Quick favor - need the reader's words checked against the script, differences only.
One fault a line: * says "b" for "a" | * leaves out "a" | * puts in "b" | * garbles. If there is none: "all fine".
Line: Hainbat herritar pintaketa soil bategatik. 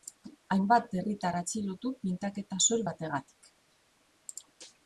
* puts in "atxilotu"